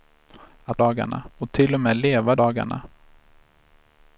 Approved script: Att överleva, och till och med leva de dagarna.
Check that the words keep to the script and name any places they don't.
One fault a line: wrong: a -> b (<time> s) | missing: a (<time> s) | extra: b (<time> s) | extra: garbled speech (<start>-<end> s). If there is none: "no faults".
wrong: överleva -> dagarna (0.8 s)
missing: de (2.4 s)